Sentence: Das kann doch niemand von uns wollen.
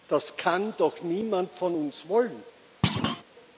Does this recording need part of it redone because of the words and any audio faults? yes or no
yes